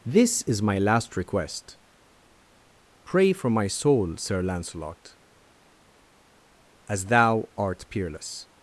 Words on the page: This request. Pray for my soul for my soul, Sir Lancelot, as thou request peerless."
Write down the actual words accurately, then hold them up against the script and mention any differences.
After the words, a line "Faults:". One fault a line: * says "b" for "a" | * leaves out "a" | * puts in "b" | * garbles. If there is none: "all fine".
This is my last request. Pray for my soul, Sir Lancelot, as thou art peerless."
Faults:
* says "is my last request Pray" for "request Pray for my soul"
* says "art" for "request"